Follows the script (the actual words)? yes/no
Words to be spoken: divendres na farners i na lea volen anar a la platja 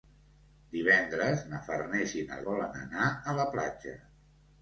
no